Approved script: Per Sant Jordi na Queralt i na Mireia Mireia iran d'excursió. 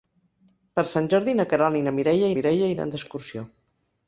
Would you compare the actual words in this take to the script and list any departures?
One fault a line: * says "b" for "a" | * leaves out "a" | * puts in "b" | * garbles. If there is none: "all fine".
all fine